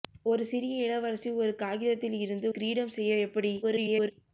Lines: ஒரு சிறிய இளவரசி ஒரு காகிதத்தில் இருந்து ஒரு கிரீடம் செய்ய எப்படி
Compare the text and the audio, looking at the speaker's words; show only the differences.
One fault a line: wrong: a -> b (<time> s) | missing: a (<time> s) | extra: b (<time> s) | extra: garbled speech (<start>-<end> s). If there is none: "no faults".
missing: ஒரு (2.5 s)
extra: garbled speech (3.6-4.1 s)